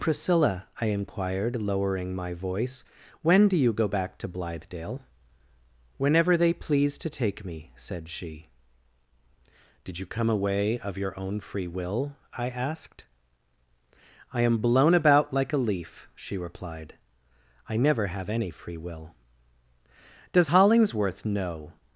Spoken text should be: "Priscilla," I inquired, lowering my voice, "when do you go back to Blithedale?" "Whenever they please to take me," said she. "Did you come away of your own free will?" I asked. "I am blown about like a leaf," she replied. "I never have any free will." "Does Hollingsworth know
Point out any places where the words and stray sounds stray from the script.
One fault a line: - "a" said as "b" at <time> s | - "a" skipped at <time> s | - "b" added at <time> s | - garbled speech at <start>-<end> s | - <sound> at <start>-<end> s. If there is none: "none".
none